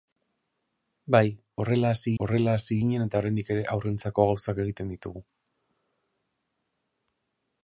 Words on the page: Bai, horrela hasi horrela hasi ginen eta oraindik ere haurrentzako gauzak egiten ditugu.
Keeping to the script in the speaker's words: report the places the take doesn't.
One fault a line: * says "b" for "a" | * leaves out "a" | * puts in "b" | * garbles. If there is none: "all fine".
all fine